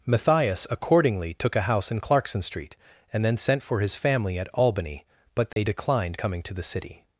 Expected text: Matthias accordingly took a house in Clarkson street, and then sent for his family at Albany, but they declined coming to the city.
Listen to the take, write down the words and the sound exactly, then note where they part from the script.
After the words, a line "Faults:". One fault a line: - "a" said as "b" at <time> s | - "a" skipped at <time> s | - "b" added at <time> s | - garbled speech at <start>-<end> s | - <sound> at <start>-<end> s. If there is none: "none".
Matthias accordingly took a house in Clarkson street, and then sent for his family at Albany, but they declined coming to the city.
Faults:
- dropout at 5.5-5.6 s